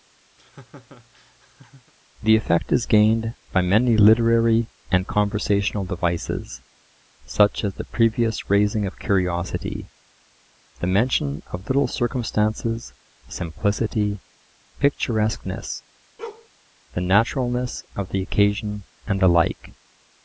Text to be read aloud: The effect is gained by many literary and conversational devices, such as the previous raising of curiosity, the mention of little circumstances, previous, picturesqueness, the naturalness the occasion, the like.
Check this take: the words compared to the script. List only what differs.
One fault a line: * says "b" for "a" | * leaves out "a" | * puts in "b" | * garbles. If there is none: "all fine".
* says "simplicity" for "previous"
* puts in "of"
* puts in "and"